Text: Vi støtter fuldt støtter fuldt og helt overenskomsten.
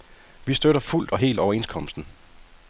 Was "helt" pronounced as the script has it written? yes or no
yes